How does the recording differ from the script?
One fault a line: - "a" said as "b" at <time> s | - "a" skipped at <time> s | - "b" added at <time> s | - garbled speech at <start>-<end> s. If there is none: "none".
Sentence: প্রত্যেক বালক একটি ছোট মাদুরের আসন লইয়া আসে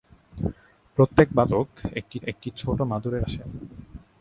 - "একটি" added at 2.2 s
- "আসন লইয়া" skipped at 3.2 s